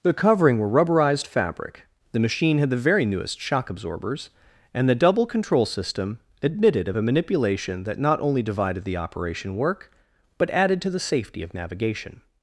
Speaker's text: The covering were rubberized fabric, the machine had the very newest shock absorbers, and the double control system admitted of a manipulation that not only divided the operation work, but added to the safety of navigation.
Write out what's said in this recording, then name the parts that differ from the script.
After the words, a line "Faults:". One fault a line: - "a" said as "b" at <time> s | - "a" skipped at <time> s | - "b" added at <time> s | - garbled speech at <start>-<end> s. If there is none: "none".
The covering were rubberized fabric, the machine had the very newest shock absorbers, and the double control system admitted of a manipulation that not only divided the operation work, but added to the safety of navigation.
Faults:
none